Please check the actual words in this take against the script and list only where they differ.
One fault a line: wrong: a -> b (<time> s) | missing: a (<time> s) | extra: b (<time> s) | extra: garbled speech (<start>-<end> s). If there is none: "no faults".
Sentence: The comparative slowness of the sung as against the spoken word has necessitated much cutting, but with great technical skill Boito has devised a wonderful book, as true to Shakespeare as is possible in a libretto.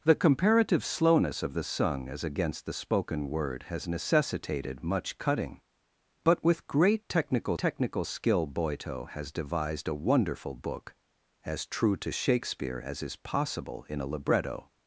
extra: technical (7.6 s)